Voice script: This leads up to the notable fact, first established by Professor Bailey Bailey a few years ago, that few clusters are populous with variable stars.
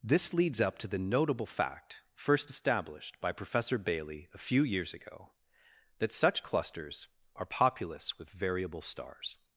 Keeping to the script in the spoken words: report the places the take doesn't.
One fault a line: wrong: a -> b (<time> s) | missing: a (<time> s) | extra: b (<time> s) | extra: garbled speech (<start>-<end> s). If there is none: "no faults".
missing: Bailey (4.3 s)
wrong: few -> such (6.1 s)